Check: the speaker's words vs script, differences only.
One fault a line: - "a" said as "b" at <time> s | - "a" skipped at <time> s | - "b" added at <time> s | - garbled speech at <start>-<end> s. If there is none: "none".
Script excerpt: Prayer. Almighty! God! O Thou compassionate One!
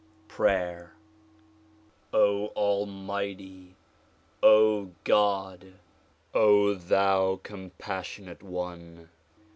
none